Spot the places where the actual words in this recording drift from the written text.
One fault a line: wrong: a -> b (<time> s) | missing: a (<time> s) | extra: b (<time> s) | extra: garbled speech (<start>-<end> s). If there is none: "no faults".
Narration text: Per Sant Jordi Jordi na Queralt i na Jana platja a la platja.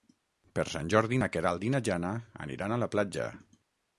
missing: Jordi (1.2 s)
wrong: platja -> aniran (2.5 s)